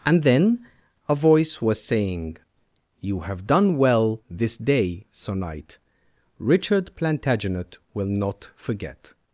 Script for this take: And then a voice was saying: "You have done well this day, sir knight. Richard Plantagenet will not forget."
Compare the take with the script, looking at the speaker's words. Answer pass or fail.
pass